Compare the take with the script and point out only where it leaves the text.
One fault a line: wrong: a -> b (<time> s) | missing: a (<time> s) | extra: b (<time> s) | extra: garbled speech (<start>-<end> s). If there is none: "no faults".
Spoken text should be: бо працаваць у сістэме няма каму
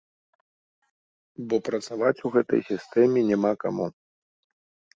extra: гэтай (2.4 s)